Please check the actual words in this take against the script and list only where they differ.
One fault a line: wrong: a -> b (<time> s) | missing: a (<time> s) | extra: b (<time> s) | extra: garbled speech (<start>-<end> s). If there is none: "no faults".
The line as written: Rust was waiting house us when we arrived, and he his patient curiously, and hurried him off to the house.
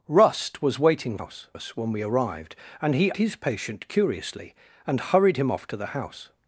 no faults